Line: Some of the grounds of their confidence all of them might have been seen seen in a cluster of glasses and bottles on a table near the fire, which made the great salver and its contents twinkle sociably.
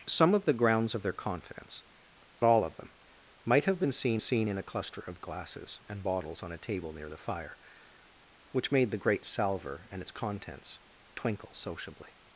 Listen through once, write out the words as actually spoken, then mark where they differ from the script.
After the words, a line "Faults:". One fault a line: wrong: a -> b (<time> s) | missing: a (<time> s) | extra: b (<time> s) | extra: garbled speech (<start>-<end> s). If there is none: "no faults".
Some of the grounds of their confidence all of them might have been seen seen in a cluster of glasses and bottles on a table near the fire, which made the great salver and its contents twinkle sociably.
Faults:
no faults